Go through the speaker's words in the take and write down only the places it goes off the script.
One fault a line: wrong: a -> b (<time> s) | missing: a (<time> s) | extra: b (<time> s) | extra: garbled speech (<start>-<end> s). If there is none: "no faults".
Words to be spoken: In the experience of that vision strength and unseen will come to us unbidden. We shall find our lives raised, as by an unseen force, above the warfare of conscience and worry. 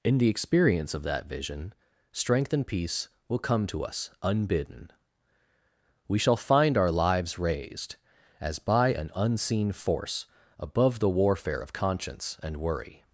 wrong: unseen -> peace (2.7 s)